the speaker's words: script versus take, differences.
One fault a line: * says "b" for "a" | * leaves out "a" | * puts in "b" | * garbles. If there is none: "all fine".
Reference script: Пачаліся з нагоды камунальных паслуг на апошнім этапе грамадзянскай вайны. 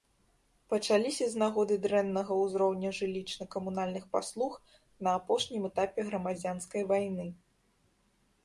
* puts in "дрэннага ўзроўня жылічна"